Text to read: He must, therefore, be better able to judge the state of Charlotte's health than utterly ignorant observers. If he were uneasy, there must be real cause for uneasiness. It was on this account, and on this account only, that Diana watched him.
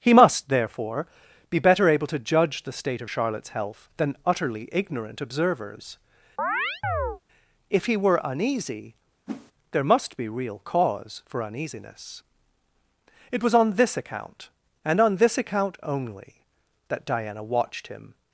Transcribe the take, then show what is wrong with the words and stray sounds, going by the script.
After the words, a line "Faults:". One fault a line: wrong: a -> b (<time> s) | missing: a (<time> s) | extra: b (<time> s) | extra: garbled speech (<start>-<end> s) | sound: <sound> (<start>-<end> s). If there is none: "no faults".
He must, therefore, be better able to judge the state of Charlotte's health than utterly ignorant observers. If he were uneasy, there must be real cause for uneasiness. It was on this account, and on this account only, that Diana watched him.
Faults:
sound: chirp (6.4-7.2 s)
sound: whoosh (9.3-9.5 s)